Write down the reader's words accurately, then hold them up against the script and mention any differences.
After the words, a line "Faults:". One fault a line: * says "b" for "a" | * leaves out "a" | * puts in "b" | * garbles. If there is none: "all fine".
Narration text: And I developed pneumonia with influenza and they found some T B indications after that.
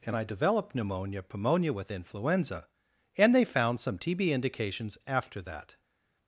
And I developed pneumonia pneumonia with influenza and they found some T B indications after that.
Faults:
* puts in "pneumonia"